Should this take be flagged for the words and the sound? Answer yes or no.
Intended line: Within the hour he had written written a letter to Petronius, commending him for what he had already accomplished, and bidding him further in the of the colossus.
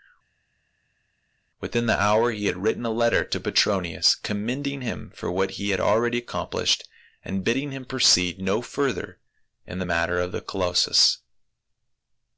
yes